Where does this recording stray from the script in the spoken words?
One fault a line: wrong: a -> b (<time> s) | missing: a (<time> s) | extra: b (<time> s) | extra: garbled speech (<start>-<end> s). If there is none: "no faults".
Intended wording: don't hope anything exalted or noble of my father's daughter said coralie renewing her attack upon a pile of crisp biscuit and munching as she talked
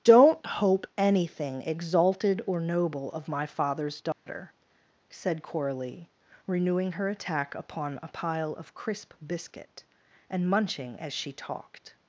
no faults